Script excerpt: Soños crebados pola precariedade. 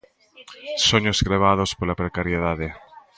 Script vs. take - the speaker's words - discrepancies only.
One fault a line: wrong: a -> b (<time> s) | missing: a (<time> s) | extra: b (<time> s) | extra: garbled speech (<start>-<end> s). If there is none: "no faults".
no faults